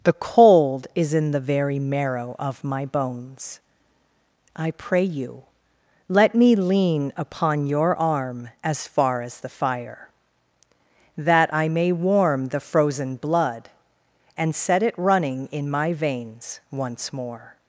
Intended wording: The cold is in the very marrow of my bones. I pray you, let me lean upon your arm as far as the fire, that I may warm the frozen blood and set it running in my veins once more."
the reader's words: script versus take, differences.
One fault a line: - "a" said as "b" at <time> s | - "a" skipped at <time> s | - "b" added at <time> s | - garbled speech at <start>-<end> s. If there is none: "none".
none